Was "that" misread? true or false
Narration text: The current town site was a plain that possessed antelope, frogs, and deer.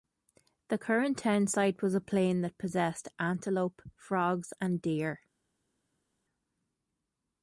false